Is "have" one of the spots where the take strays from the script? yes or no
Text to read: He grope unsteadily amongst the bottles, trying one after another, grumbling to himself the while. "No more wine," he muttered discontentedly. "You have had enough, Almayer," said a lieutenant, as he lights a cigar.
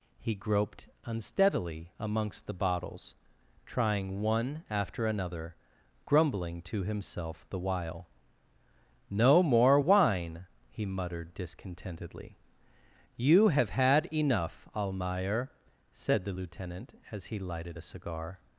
no